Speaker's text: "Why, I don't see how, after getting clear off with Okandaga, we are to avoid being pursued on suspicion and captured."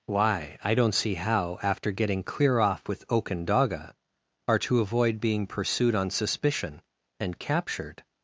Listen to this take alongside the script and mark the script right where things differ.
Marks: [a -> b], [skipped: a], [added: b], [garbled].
"Why, I don't see how, after getting clear off with Okandaga, [skipped: we] are to avoid being pursued on suspicion and captured."